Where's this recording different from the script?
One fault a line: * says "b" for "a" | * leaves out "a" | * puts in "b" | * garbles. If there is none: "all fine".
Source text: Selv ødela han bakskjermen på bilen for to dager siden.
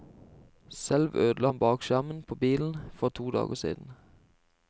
all fine